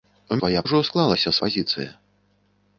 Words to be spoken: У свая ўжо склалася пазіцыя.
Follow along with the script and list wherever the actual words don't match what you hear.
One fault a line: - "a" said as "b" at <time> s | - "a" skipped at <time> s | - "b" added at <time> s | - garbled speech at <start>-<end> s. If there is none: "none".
none